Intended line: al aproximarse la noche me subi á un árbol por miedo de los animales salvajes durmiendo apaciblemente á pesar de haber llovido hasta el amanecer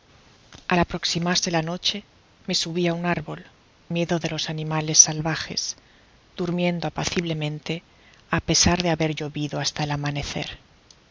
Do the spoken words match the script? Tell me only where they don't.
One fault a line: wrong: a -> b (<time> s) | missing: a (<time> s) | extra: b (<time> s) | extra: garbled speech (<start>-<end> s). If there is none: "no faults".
missing: por (3.4 s)